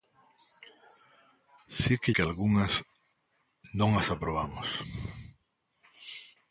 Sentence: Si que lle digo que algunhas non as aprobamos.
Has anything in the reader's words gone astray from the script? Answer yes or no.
yes